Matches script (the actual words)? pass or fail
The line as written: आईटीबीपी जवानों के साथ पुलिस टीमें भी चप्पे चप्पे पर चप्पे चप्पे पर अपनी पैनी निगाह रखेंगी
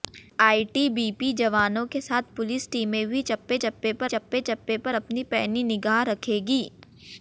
pass